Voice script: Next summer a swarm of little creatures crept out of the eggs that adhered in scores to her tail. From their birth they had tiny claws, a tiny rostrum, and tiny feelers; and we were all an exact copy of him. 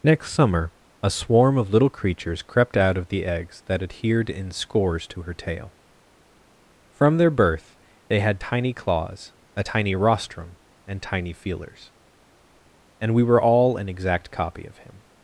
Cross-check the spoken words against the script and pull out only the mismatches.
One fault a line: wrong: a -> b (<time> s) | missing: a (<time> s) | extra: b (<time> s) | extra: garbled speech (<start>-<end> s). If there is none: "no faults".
no faults